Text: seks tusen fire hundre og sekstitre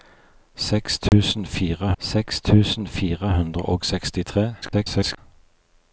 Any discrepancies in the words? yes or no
yes